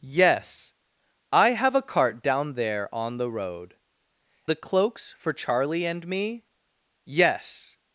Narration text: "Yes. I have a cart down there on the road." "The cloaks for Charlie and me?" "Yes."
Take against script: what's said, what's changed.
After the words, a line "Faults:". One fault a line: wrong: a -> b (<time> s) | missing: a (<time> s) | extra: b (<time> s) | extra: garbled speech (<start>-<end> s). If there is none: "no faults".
"Yes. I have a cart down there on the road." "The cloaks for Charlie and me?" "Yes."
Faults:
no faults